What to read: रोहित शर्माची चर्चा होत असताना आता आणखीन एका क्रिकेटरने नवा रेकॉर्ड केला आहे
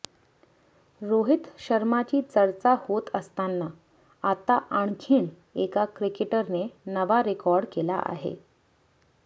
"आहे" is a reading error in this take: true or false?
false